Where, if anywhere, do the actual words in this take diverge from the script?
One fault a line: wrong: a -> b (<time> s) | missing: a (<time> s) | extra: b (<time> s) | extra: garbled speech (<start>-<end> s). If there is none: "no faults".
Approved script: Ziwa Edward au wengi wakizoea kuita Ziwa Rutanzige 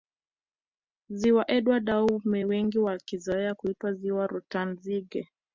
no faults